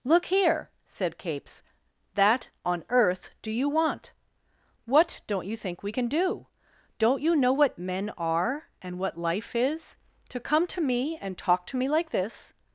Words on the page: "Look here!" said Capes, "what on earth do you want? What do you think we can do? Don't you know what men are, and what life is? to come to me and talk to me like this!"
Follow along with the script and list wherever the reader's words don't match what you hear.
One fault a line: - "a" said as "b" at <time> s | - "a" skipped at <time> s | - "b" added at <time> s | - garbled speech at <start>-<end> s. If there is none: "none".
- "what" said as "that" at 2.1 s
- "do" said as "don't" at 5.3 s